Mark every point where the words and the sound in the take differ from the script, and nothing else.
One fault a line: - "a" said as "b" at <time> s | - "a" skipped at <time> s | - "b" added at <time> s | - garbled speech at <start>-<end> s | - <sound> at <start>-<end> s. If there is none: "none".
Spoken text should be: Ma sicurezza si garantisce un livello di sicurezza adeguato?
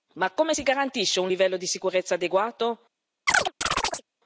- "sicurezza" said as "come" at 0.3 s
- chirp at 3.3-4.0 s